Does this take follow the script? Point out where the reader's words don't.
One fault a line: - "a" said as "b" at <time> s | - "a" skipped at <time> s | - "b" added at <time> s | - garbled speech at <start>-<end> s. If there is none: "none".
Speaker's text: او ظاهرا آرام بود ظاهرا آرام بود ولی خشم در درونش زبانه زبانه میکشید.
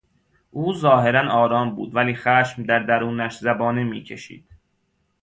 - "ظاهرا آرام بود" skipped at 1.9 s
- "زبانه" skipped at 3.8 s